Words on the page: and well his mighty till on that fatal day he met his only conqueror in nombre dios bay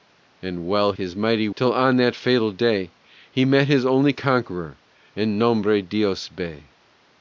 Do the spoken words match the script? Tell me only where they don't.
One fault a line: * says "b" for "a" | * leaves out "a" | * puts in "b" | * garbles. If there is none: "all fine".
all fine